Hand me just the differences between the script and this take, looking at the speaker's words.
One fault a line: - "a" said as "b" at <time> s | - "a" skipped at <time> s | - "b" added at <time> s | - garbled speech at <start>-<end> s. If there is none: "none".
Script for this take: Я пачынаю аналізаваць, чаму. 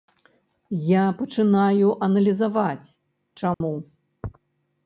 none